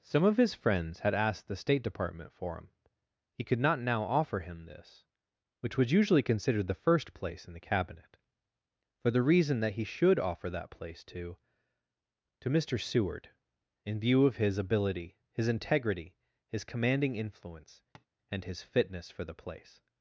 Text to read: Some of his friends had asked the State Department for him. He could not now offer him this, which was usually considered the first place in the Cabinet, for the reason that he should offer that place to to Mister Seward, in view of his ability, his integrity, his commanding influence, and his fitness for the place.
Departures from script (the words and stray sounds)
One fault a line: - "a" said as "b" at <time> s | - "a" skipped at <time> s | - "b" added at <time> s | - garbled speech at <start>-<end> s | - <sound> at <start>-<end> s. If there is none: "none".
- tap at 17.9-18.1 s